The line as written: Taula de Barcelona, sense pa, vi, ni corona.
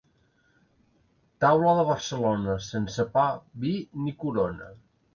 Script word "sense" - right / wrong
right